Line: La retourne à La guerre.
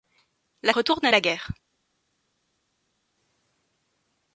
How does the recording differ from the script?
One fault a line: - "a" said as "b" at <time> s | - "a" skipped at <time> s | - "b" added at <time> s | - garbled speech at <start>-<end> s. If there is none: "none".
none